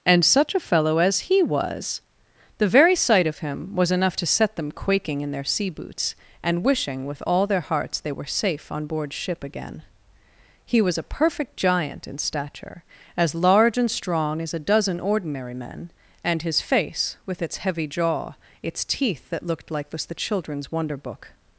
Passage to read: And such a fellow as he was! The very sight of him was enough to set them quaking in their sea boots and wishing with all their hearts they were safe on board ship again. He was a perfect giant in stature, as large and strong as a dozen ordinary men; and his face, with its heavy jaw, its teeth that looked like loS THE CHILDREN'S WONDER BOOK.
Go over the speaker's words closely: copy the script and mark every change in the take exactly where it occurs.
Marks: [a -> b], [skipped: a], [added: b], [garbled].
And such a fellow as he was! The very sight of him was enough to set them quaking in their sea boots and wishing with all their hearts they were safe on board ship again. He was a perfect giant in stature, as large and strong as a dozen ordinary men; and his face, with its heavy jaw, its teeth that looked like [loS -> was] THE CHILDREN'S WONDER BOOK.